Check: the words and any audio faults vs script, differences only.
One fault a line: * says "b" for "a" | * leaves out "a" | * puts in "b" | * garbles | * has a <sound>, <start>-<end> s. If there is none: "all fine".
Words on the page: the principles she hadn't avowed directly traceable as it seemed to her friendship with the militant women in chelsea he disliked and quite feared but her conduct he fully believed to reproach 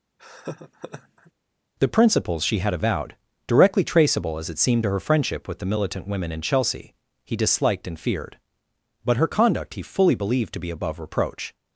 * has a laugh, 0.2-1.3 s
* says "had" for "hadn't"
* leaves out "quite"
* puts in "be above"